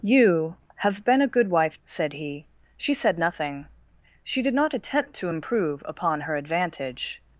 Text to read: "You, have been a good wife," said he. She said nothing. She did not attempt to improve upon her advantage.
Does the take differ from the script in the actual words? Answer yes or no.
no